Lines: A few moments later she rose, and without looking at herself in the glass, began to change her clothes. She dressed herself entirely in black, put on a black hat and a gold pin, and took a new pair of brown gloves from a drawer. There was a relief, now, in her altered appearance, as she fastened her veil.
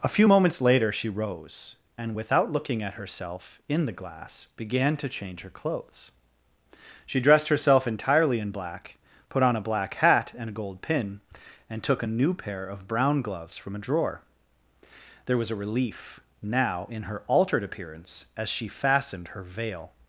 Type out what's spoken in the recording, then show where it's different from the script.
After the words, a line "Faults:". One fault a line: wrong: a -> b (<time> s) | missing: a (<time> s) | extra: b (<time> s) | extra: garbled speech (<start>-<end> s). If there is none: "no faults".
A few moments later she rose, and without looking at herself in the glass, began to change her clothes. She dressed herself entirely in black, put on a black hat and a gold pin, and took a new pair of brown gloves from a drawer. There was a relief, now, in her altered appearance, as she fastened her veil.
Faults:
no faults